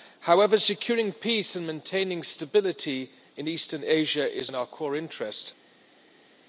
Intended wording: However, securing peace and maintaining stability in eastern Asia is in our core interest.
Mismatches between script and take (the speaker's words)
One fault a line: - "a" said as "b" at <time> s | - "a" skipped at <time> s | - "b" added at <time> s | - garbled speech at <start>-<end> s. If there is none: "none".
none